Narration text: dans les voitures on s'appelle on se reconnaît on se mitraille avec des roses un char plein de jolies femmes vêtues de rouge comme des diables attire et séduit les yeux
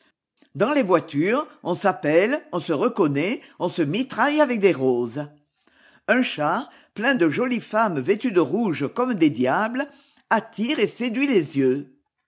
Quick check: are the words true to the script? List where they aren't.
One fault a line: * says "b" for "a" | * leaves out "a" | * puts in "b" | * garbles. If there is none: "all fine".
all fine